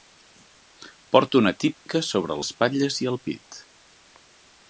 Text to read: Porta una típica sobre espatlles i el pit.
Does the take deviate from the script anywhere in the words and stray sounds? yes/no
yes